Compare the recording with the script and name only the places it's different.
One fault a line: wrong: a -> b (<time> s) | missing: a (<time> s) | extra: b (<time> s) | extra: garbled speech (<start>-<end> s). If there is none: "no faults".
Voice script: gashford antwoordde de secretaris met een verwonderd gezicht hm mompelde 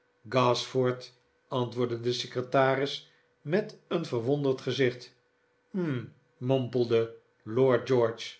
no faults